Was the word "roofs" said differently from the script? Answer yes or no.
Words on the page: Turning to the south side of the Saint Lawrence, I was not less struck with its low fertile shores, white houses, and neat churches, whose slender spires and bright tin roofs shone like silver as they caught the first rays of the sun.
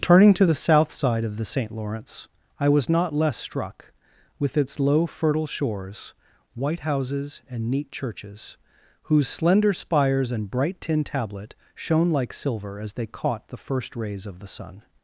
yes